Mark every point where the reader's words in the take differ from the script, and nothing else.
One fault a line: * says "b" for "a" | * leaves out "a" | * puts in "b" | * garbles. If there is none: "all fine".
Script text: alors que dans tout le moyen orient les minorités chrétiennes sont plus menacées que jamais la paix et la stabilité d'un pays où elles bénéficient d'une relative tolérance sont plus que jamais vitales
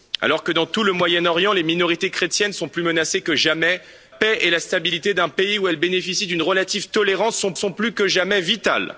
* leaves out "la"
* puts in "sont"